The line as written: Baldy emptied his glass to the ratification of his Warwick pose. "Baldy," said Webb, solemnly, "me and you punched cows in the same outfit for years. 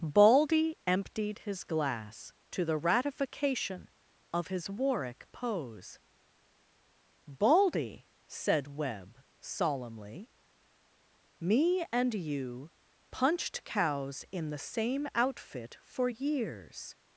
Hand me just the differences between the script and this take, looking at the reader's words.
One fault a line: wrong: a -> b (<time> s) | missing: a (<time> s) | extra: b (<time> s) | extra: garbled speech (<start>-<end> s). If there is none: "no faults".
no faults